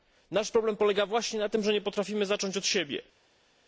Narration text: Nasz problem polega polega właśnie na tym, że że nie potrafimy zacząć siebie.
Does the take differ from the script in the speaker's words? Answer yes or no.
yes